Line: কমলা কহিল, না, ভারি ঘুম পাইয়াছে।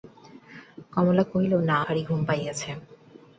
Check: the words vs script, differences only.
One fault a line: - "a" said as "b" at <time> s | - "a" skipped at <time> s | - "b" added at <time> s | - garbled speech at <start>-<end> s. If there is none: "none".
none